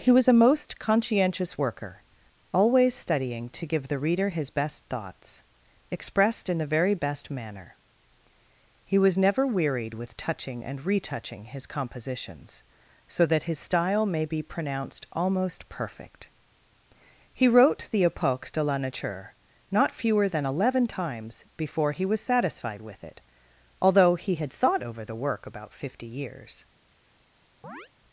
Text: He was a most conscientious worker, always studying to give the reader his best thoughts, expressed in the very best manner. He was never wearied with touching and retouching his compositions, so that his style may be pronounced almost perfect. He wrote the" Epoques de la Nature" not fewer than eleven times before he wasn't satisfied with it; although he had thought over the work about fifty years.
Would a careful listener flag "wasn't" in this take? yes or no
yes